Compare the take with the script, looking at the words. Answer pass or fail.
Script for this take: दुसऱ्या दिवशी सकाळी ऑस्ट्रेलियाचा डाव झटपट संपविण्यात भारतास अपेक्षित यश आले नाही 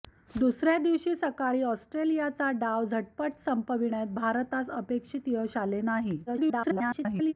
fail